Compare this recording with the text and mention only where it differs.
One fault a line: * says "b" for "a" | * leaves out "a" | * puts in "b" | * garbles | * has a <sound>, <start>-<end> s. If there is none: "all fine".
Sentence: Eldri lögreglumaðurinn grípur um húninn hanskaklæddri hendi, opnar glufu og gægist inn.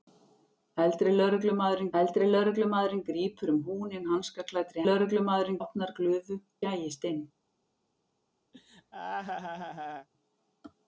* puts in "eldri lögreglumaðurinn"
* says "lögreglumaðurinn" for "hendi"
* leaves out "og"
* has a laugh, 8.5-10.1 s